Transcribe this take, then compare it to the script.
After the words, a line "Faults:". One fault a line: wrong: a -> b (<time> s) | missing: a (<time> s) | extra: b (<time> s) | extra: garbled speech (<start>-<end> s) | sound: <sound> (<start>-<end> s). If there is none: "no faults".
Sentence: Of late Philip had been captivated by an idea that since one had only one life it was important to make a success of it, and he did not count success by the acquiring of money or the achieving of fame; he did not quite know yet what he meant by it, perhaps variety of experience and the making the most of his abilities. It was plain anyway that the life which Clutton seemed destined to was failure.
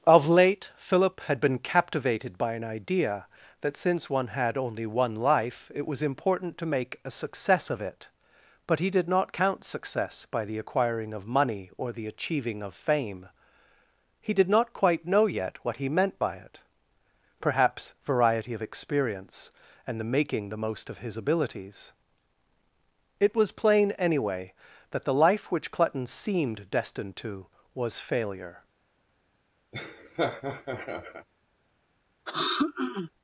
Of late Philip had been captivated by an idea that since one had only one life it was important to make a success of it, but he did not count success by the acquiring of money or the achieving of fame; he did not quite know yet what he meant by it, perhaps variety of experience and the making the most of his abilities. It was plain anyway that the life which Clutton seemed destined to was failure.
Faults:
wrong: and -> but (8.7 s)
sound: laugh (29.7-31.3 s)
sound: throat clearing (32.3-33.1 s)